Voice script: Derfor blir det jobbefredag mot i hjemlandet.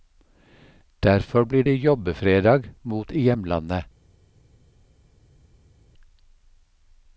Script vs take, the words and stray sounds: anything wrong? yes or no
no